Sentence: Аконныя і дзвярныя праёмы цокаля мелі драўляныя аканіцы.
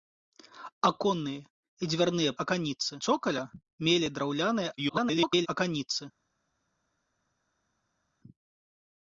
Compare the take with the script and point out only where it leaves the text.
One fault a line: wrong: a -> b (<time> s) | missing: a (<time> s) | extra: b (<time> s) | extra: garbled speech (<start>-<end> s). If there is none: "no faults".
wrong: праёмы -> аканіцы (2.4 s)
extra: garbled speech (4.8-5.5 s)